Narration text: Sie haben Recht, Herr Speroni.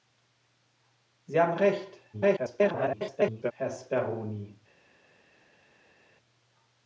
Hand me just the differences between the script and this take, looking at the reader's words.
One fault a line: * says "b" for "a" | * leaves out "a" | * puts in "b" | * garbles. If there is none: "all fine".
* garbles